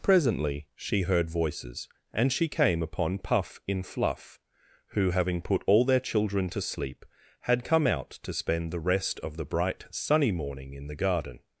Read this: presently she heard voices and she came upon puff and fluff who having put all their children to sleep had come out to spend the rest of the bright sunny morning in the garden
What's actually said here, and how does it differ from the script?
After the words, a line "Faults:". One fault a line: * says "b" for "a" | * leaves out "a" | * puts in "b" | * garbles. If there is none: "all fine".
presently she heard voices and she came upon puff in fluff who having put all their children to sleep had come out to spend the rest of the bright sunny morning in the garden
Faults:
* says "in" for "and"